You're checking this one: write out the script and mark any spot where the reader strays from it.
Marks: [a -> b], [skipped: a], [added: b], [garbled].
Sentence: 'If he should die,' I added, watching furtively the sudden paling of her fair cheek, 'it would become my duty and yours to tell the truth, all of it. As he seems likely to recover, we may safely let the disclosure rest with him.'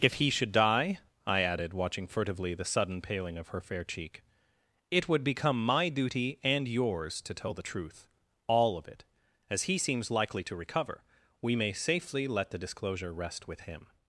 'If he should die,' I added, watching furtively the sudden paling of her fair cheek, 'it would become my duty and yours to tell the truth, all of it. As he seems likely to recover, we may safely let the disclosure rest with him.'